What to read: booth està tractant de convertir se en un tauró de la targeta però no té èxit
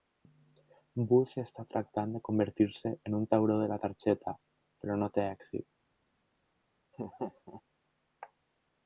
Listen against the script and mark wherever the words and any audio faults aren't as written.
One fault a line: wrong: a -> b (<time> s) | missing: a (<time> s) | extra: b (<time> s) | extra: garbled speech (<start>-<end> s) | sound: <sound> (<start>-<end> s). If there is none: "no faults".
sound: laugh (6.9-7.6 s)